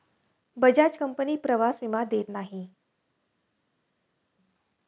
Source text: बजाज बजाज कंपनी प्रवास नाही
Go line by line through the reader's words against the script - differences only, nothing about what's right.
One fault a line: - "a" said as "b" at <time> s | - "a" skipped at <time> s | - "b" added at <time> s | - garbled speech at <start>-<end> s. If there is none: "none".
- "बजाज" skipped at 1.0 s
- "विमा देत" added at 1.8 s